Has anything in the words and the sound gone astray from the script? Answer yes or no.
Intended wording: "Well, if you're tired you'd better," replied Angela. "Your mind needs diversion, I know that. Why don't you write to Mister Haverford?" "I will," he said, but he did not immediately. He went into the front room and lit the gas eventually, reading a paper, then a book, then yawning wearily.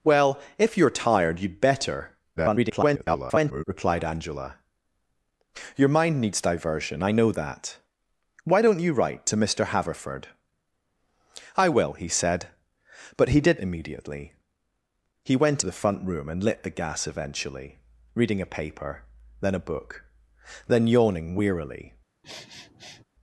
yes